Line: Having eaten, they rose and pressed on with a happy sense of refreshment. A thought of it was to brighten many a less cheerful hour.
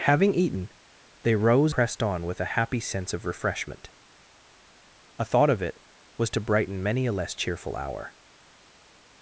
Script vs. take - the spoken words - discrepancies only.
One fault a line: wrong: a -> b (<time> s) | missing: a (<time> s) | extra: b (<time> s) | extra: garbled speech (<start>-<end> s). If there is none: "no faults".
missing: and (1.8 s)